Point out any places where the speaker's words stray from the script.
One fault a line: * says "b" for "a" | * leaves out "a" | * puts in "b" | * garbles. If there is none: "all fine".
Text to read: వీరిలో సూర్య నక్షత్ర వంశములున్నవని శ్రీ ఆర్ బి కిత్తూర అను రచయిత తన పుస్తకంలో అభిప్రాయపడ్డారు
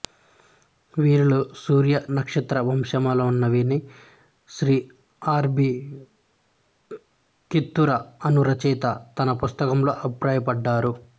all fine